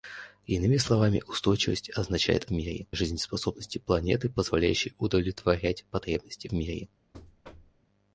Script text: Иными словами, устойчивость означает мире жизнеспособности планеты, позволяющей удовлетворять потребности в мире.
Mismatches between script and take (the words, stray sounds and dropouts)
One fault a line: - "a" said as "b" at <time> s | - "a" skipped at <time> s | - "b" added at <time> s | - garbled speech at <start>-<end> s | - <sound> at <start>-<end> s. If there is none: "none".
- thud at 7.1-7.8 s